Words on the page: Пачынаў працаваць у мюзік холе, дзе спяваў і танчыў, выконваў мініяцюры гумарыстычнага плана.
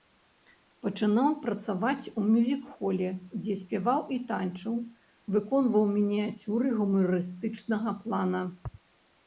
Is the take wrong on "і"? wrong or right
right